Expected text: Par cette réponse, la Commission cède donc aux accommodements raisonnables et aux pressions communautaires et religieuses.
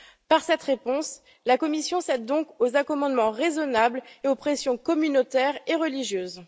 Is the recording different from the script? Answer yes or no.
no